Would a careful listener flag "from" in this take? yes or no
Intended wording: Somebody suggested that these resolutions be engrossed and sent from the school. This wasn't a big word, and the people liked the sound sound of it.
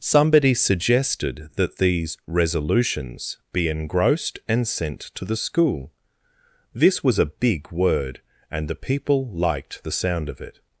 yes